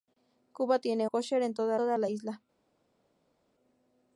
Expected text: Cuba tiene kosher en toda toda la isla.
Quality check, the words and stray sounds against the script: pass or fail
pass